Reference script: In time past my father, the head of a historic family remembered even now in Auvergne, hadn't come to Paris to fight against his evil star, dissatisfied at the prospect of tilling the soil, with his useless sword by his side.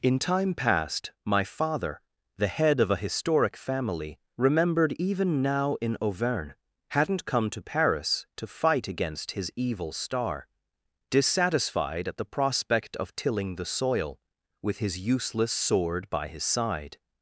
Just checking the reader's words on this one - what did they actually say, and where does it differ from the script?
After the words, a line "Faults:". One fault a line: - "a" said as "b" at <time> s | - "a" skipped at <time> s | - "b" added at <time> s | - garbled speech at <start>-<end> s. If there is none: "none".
In time past my father, the head of a historic family remembered even now in Auvergne, hadn't come to Paris to fight against his evil star, dissatisfied at the prospect of tilling the soil, with his useless sword by his side.
Faults:
none